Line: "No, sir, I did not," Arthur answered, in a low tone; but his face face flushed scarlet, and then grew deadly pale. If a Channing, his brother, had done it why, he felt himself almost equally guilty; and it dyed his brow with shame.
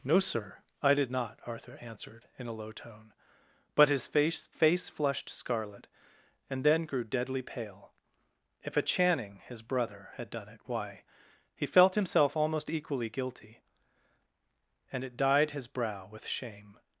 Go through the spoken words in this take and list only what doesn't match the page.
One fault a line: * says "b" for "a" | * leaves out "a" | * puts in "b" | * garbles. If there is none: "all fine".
all fine